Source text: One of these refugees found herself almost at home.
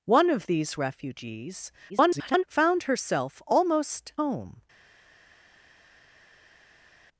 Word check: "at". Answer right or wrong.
wrong